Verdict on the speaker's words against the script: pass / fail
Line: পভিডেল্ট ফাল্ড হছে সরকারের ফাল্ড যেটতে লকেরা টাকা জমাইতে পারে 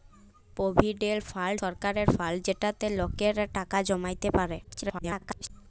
fail